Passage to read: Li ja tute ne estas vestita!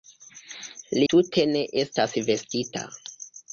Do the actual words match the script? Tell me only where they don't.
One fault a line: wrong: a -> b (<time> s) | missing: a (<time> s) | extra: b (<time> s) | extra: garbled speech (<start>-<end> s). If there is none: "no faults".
missing: ja (1.1 s)